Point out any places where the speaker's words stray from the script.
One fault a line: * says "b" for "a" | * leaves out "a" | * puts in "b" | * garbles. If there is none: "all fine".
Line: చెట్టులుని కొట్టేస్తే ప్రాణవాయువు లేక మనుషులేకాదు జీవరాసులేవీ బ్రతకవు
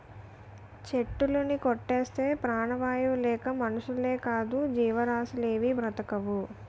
all fine